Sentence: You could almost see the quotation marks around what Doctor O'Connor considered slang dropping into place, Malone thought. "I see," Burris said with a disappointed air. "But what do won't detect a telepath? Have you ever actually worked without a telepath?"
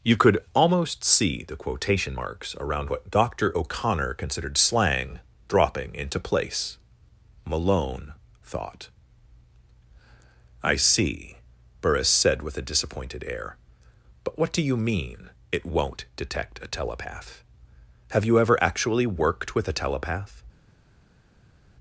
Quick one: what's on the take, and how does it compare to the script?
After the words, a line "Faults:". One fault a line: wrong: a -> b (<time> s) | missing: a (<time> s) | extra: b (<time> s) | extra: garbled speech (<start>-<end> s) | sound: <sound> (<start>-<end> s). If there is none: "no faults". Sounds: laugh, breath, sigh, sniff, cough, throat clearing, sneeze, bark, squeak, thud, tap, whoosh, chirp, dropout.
You could almost see the quotation marks around what Doctor O'Connor considered slang dropping into place, Malone thought. "I see," Burris said with a disappointed air. "But what do you mean, it won't detect a telepath? Have you ever actually worked with a telepath?"
Faults:
extra: you mean it (14.6 s)
wrong: without -> with (19.5 s)